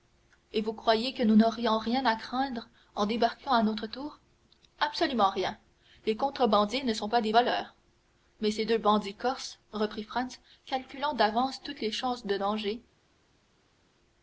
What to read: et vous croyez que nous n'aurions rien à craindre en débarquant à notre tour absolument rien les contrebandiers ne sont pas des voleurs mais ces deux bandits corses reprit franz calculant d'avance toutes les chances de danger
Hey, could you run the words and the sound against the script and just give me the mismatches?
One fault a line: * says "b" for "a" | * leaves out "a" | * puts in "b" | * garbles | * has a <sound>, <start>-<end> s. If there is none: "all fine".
all fine